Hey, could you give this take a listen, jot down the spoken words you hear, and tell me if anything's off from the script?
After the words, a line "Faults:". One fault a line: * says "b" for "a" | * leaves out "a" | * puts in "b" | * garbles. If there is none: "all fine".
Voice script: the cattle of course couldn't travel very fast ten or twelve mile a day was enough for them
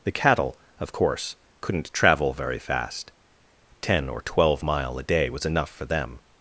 the cattle of course couldn't travel very fast ten or twelve mile a day was enough for them
Faults:
all fine